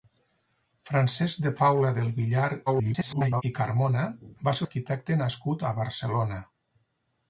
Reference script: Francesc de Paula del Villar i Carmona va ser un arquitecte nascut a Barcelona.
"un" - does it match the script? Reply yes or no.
no